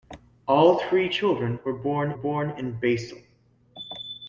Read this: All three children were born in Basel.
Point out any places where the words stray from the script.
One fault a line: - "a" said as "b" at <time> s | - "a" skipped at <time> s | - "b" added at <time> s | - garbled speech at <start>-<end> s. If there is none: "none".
- "born" added at 2.1 s